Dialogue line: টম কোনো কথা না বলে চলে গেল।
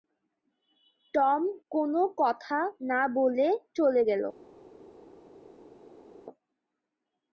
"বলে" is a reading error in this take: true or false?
false